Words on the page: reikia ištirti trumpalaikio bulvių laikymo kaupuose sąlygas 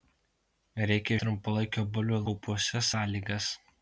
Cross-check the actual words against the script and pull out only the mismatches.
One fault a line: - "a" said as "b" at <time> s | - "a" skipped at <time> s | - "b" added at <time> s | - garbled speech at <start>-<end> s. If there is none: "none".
- "ištirti" skipped at 1.2 s
- "laikymo" skipped at 2.2 s